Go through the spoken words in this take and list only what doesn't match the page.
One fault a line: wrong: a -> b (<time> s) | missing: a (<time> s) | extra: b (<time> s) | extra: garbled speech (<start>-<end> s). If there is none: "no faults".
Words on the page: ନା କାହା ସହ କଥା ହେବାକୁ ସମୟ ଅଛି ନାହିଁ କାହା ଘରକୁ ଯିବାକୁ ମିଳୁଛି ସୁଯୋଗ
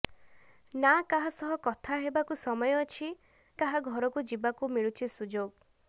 missing: ନାହିଁ (3.1 s)